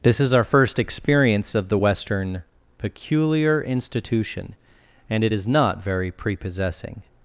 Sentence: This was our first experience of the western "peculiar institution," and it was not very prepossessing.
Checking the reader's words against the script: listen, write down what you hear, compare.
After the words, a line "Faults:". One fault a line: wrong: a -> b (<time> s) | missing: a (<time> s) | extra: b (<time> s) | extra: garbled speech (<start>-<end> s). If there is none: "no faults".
This is our first experience of the western "peculiar institution," and it is not very prepossessing.
Faults:
wrong: was -> is (0.2 s)
wrong: was -> is (5.3 s)